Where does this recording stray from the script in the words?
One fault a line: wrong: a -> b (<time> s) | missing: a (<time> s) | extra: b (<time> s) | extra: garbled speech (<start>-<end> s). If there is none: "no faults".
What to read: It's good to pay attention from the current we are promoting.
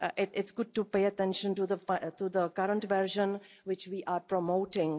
wrong: from -> to (1.5 s)
extra: version which (2.8 s)